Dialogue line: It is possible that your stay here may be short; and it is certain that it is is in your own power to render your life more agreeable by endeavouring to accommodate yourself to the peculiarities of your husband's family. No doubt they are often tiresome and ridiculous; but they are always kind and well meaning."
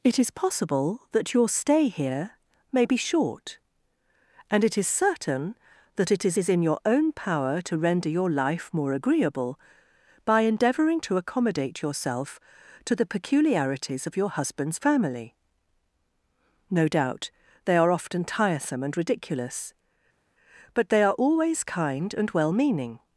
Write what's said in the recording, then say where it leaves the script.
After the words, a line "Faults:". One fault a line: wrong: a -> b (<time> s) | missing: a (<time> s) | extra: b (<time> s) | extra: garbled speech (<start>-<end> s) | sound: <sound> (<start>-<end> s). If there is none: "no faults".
It is possible that your stay here may be short; and it is certain that it is is in your own power to render your life more agreeable by endeavouring to accommodate yourself to the peculiarities of your husband's family. No doubt they are often tiresome and ridiculous; but they are always kind and well meaning."
Faults:
no faults